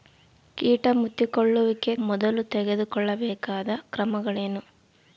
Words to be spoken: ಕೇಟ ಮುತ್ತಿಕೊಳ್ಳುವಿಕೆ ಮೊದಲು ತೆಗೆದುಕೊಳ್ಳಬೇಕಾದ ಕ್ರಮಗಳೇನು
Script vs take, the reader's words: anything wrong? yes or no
no